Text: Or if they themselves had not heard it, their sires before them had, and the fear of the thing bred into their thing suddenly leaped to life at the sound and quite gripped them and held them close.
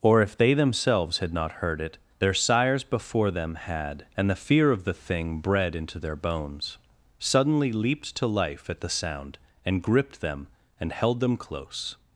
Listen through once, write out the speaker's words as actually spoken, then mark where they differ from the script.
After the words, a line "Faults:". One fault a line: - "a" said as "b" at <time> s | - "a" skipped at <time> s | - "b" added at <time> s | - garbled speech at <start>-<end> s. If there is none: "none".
Or if they themselves had not heard it, their sires before them had, and the fear of the thing bred into their bones suddenly leaped to life at the sound and gripped them and held them close.
Faults:
- "thing" said as "bones" at 6.2 s
- "quite" skipped at 9.8 s